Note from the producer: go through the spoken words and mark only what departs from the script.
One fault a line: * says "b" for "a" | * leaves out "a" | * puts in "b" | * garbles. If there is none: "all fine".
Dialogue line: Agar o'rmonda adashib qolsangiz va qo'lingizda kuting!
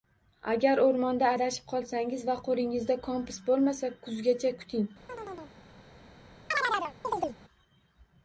* puts in "kompas bo'lmasa kuzgacha"